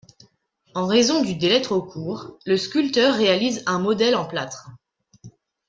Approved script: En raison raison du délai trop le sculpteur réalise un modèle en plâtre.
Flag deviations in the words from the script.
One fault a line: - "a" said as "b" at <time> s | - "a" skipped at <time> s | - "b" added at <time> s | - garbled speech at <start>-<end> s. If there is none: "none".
- "raison" skipped at 1.2 s
- "court" added at 1.8 s